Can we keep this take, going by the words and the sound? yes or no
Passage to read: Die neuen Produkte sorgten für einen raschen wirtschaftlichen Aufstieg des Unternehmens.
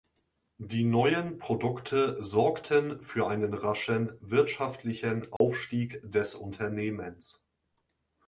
no